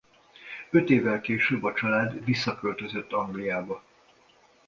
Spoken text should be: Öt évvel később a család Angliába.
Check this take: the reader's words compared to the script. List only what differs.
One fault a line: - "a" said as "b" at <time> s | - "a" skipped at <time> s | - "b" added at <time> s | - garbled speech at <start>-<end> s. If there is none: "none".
- "visszaköltözött" added at 2.2 s